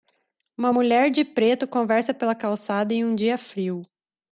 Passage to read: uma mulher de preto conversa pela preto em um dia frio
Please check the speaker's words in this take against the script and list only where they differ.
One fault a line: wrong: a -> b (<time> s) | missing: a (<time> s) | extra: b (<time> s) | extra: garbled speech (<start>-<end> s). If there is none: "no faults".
wrong: preto -> calçada (2.3 s)